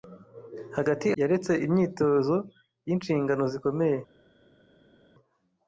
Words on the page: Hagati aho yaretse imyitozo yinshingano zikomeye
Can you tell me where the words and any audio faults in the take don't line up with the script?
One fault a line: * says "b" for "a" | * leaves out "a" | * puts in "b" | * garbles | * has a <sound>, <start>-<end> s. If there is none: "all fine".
* leaves out "aho"